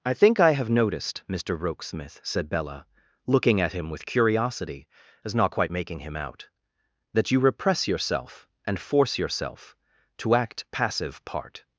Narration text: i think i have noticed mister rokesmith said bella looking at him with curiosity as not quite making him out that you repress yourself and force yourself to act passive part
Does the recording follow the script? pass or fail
pass